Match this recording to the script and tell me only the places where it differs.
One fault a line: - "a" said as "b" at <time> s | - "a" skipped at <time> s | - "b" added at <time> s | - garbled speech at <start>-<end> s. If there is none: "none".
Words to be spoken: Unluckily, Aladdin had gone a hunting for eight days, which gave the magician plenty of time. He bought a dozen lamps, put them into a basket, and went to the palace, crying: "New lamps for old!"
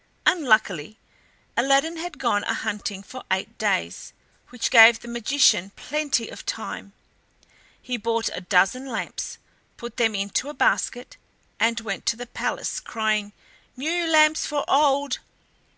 none